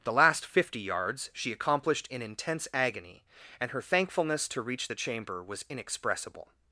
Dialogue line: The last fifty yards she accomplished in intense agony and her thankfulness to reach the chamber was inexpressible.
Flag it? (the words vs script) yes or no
no